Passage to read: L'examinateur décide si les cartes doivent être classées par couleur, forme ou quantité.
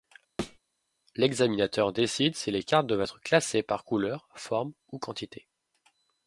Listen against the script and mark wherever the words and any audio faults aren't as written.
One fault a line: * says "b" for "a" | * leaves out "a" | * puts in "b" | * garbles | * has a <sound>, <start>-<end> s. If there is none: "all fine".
* has a thud, 0.4-0.6 s